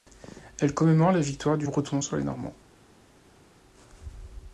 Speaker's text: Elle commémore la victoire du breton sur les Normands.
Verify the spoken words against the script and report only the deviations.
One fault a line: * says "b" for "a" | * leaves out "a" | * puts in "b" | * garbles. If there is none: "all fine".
all fine